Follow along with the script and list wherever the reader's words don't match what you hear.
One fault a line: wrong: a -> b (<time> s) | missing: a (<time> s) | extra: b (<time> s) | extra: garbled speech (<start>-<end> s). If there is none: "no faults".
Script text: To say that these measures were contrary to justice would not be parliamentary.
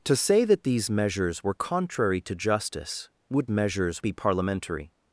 wrong: not -> measures (3.5 s)